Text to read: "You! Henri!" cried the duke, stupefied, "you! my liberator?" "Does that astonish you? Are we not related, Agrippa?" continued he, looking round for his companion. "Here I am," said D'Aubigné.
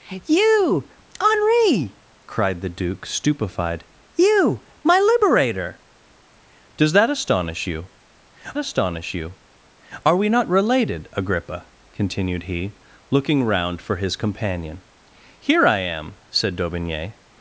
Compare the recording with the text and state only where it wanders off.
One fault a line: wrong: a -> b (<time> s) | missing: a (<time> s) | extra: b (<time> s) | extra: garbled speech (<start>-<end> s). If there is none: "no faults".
extra: astonish you (8.6 s)